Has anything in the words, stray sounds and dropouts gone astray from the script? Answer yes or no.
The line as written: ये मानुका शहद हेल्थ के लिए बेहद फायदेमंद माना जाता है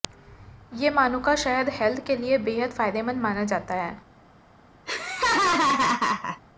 yes